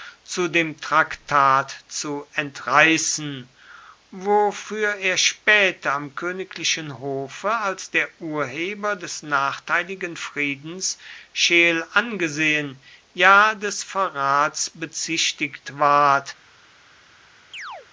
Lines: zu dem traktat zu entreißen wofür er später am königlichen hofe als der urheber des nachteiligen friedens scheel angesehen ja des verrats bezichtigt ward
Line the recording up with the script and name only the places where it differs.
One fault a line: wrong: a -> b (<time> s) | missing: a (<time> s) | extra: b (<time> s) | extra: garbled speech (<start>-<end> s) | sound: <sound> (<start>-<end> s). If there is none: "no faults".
sound: chirp (17.5-17.9 s)